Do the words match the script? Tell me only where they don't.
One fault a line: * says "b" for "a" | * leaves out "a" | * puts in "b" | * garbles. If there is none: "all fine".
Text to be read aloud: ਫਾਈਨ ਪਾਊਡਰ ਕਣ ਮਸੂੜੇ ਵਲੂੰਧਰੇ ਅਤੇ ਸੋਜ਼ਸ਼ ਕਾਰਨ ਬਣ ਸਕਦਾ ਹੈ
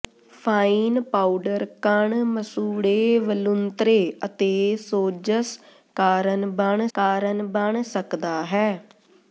* puts in "ਕਾਰਨ ਬਣ"